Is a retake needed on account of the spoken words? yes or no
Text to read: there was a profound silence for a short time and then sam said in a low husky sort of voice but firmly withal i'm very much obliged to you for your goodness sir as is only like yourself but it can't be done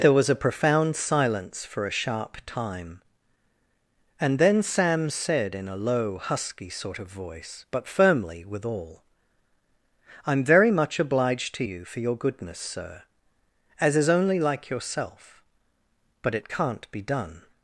yes